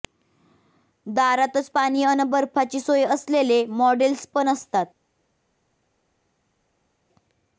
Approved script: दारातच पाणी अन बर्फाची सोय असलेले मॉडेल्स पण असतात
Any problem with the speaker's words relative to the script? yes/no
no